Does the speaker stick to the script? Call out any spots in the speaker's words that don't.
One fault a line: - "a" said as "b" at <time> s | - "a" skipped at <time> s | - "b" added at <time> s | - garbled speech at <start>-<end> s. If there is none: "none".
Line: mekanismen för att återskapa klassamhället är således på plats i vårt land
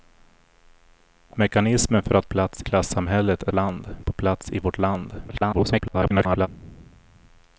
- "återskapa" said as "plats" at 2.2 s
- "således" said as "land" at 3.5 s
- garbled speech at 5.3-6.5 s